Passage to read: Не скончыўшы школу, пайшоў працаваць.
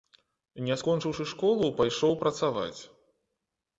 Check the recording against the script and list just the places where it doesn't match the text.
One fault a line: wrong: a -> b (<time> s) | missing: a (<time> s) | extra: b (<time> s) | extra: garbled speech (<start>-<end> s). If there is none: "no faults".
no faults